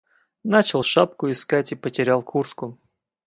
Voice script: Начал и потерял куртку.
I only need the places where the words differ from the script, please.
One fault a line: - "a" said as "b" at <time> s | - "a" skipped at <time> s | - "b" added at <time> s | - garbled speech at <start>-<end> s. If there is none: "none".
- "шапку искать" added at 0.8 s